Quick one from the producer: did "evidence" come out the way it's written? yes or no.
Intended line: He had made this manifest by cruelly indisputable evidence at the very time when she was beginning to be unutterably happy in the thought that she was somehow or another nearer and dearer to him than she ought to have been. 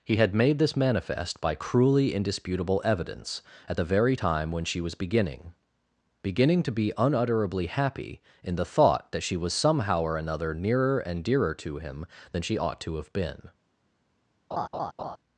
yes